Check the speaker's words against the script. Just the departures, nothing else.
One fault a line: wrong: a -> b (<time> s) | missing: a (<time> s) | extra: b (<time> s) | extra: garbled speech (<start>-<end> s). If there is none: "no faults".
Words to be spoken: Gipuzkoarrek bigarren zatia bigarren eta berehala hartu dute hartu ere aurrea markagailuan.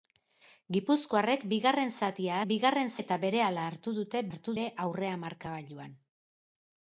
no faults